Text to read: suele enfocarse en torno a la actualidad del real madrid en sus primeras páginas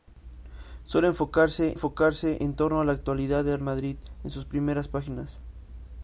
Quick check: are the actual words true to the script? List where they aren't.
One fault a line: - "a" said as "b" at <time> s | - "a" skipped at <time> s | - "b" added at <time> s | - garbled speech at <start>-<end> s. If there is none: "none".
- "enfocarse" added at 1.7 s
- "real" skipped at 3.6 s